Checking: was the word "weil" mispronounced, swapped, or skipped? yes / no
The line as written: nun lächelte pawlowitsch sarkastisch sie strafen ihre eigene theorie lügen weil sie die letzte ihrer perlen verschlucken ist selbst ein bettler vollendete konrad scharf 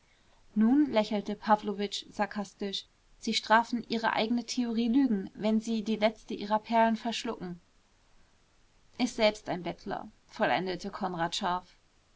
yes